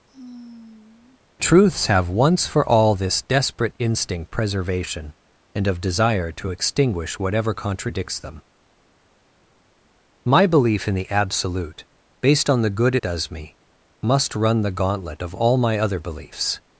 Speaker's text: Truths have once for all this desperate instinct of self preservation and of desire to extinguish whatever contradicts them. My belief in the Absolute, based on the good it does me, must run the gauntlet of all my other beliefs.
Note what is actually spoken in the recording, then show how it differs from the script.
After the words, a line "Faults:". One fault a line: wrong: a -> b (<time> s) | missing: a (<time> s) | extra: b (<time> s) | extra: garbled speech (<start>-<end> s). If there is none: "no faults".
Truths have once for all this desperate instinct preservation and of desire to extinguish whatever contradicts them. My belief in the Absolute, based on the good does me, must run the gauntlet of all my other beliefs.
Faults:
missing: of self (4.3 s)
missing: it (13.0 s)